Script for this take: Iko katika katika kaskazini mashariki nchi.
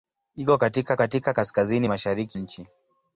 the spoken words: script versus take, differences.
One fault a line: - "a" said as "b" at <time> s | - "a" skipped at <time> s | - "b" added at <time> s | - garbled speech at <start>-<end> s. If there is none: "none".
none